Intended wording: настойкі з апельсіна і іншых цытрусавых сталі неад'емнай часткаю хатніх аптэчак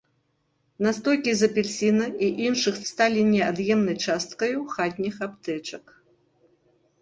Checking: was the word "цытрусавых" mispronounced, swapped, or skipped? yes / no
yes